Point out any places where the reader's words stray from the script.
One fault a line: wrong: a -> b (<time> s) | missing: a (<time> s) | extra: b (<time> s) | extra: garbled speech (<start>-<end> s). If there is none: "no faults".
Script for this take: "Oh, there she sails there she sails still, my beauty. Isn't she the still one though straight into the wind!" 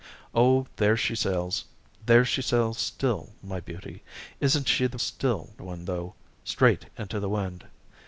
no faults